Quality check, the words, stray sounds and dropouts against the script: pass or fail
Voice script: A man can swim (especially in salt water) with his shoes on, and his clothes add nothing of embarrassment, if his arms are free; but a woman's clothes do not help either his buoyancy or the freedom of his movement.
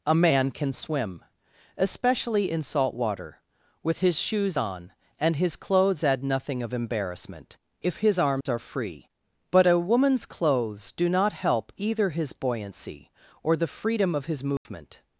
fail